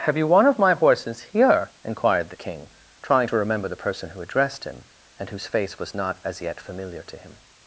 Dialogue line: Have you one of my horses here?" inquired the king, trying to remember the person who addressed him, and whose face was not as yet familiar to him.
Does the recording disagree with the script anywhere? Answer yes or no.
no